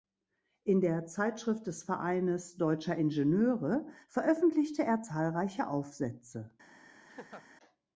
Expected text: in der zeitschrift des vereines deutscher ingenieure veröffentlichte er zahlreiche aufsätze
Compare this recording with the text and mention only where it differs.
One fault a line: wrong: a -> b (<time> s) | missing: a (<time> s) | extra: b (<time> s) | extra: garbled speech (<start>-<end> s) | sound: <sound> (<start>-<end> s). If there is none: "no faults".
sound: laugh (7.1-7.5 s)